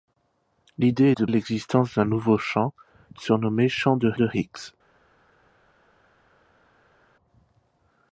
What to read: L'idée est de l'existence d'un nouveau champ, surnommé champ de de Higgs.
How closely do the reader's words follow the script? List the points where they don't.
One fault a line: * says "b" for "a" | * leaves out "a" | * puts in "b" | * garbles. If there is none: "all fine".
all fine